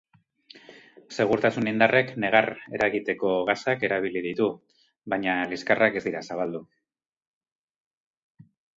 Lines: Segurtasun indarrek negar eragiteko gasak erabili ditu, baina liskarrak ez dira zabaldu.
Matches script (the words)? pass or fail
pass